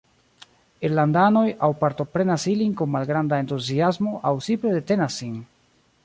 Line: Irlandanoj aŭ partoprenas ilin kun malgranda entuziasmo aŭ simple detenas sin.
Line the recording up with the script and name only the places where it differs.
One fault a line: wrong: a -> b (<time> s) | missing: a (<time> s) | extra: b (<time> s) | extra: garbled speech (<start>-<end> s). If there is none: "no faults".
no faults